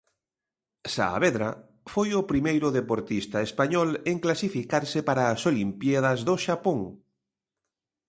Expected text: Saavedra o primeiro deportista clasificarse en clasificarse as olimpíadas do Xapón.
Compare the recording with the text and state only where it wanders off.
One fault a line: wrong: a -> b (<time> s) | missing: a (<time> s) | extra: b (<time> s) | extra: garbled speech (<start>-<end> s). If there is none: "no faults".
extra: foi (1.9 s)
wrong: clasificarse -> español (3.5 s)
extra: para (5.1 s)